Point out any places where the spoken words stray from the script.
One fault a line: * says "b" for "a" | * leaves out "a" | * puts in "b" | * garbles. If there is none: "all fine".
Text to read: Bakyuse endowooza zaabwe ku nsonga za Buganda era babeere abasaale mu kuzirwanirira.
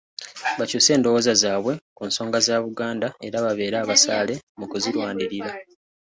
all fine